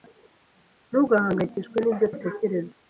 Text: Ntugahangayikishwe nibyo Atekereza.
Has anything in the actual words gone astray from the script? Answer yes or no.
no